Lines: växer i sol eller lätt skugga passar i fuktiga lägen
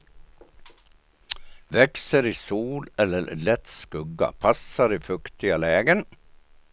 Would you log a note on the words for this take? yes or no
no